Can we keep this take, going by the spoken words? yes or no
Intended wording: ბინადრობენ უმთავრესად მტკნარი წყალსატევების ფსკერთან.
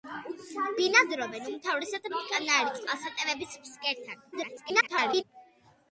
no